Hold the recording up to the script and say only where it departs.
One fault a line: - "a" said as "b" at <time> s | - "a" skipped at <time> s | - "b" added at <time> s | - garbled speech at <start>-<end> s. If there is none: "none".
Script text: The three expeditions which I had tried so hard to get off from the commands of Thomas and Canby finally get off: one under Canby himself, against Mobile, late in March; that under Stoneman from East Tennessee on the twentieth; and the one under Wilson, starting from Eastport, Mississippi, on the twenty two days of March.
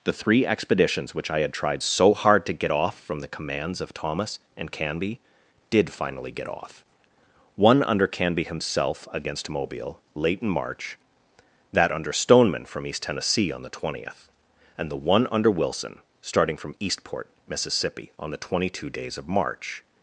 - "did" added at 5.7 s